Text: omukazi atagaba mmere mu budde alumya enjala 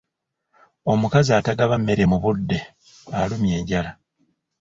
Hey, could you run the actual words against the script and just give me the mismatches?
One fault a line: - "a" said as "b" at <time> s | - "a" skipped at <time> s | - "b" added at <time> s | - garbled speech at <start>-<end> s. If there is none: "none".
none